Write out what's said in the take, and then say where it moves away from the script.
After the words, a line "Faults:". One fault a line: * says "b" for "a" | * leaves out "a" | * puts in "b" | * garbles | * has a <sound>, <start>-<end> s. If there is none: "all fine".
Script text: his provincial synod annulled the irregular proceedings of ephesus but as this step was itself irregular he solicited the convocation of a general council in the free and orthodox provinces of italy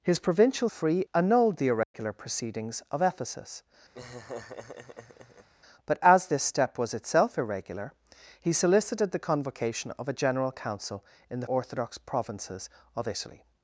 his provincial free annulled the irregular proceedings of ephesus but as this step was itself irregular he solicited the convocation of a general council in the orthodox provinces of italy
Faults:
* says "free" for "synod"
* has a dropout, 1.8-1.9 s
* has a laugh, 3.9-5.5 s
* leaves out "free and"